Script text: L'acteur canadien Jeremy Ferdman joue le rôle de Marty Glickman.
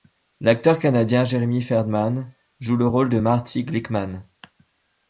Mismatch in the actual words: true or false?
false